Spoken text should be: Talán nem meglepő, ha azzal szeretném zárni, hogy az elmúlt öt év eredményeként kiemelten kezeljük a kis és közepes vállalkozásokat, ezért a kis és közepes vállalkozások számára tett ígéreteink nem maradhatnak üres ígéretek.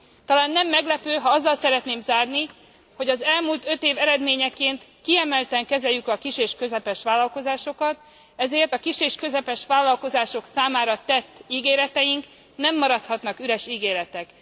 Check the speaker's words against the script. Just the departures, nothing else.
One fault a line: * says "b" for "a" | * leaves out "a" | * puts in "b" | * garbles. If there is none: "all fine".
all fine